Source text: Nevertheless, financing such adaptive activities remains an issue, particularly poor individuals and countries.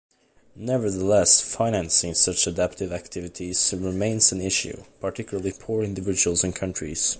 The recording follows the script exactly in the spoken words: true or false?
true